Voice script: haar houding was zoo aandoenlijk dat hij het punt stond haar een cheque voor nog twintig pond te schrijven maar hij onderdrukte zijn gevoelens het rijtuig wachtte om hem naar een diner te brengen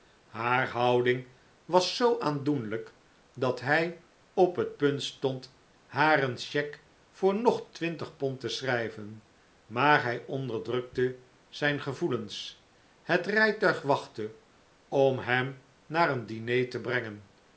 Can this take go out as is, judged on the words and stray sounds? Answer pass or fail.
fail